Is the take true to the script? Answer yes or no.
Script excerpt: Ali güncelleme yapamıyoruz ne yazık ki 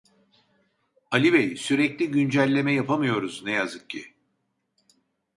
no